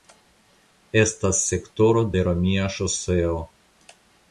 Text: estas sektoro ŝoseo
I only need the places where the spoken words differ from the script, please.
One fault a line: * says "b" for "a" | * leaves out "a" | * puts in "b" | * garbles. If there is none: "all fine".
* puts in "de romia"